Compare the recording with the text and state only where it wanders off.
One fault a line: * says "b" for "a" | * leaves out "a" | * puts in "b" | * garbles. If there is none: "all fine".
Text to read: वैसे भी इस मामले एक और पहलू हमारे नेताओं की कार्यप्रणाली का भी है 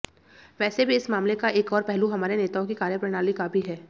* puts in "का"